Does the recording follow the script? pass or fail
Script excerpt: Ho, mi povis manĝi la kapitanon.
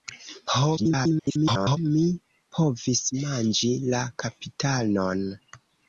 fail